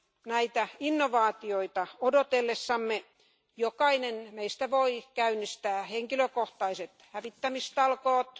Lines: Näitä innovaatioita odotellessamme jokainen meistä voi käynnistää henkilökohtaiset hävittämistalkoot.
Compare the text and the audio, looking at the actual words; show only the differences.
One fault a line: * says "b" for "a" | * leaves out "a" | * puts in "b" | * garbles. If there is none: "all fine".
all fine